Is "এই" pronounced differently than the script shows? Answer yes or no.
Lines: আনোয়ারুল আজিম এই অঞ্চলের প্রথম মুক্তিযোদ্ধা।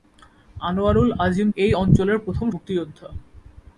no